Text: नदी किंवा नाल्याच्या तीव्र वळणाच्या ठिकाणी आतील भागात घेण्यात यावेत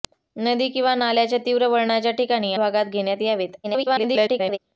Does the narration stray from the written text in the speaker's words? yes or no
yes